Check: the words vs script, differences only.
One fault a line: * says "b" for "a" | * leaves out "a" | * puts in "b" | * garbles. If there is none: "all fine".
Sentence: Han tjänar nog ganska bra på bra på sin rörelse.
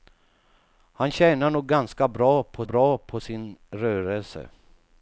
all fine